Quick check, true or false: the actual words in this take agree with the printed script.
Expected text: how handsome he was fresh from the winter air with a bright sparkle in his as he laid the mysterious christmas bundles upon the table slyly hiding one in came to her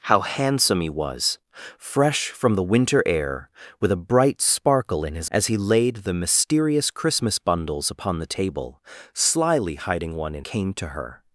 true